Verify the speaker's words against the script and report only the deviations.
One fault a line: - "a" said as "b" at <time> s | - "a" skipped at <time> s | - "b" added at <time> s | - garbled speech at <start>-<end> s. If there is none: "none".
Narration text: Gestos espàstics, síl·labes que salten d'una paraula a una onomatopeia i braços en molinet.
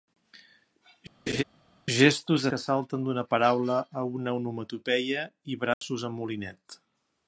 - "espàstics síl·labes" skipped at 2.5 s